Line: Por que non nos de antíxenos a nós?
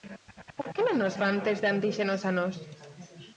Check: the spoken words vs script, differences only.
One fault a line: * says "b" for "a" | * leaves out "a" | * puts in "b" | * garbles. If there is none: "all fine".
* puts in "fan test"